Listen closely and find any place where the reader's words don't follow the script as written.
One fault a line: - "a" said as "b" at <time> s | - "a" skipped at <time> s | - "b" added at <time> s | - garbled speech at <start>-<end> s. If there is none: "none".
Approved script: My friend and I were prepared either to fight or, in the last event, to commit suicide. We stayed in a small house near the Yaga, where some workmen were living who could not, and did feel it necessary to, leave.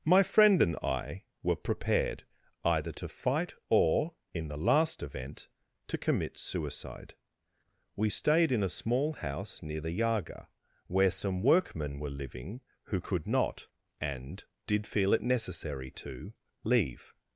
none